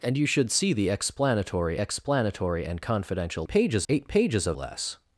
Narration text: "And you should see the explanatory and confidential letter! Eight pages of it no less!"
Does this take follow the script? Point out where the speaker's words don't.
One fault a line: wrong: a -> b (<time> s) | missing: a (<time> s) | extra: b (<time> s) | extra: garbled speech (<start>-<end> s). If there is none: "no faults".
extra: explanatory (1.8 s)
wrong: letter -> pages (3.5 s)
missing: it no (4.6 s)